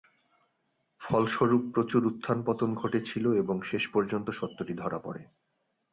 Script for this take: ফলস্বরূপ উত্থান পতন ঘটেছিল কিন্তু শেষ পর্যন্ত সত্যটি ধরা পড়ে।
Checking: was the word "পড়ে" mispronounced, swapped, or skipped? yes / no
no